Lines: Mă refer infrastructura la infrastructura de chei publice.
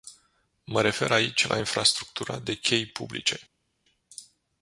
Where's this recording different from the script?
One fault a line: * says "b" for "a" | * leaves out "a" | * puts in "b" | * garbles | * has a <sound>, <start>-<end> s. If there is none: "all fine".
* says "aici" for "infrastructura"